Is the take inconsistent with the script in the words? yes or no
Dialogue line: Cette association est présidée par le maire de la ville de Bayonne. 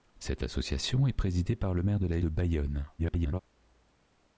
yes